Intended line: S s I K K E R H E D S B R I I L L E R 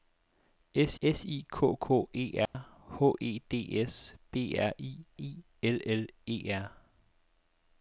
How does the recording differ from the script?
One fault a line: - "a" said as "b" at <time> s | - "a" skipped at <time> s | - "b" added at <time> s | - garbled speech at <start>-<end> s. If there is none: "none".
none